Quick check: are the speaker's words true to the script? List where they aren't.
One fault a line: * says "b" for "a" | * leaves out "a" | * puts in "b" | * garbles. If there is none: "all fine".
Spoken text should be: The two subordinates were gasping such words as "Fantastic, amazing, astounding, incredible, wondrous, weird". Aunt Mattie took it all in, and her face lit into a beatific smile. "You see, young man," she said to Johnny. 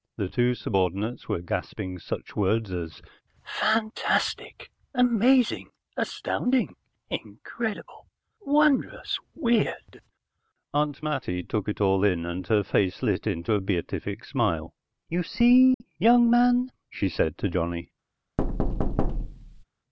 all fine